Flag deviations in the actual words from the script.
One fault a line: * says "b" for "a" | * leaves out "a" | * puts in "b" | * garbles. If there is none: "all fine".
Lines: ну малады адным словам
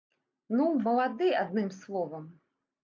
all fine